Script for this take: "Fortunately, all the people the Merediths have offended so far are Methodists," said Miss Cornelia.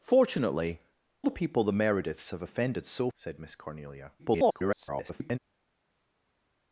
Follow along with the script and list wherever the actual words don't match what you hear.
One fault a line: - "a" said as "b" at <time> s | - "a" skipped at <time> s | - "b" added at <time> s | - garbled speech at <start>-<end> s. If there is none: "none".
- "all" skipped at 0.8 s
- "far are Methodists" skipped at 3.1 s
- garbled speech at 4.2-5.4 s